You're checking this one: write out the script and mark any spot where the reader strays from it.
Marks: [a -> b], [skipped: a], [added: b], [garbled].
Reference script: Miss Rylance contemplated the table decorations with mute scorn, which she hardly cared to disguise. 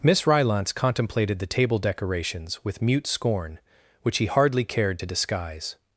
Miss Rylance contemplated the table decorations with mute scorn, which [she -> he] hardly cared to disguise.